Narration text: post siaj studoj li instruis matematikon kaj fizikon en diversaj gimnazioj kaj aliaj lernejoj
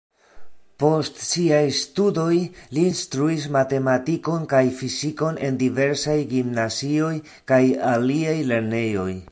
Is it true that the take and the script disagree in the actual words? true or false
false